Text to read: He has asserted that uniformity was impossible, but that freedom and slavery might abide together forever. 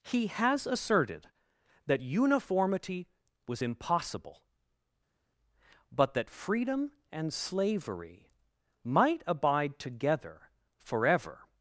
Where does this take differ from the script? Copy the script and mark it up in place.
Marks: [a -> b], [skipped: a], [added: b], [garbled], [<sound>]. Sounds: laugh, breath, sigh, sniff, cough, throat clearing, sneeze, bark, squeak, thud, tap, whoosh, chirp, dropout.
He has asserted that uniformity was impossible, but that freedom and slavery might abide together forever.